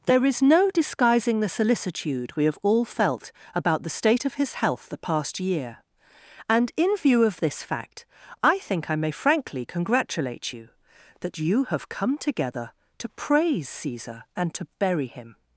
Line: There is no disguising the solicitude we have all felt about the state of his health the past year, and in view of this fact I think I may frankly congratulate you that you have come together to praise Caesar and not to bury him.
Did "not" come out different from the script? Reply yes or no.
yes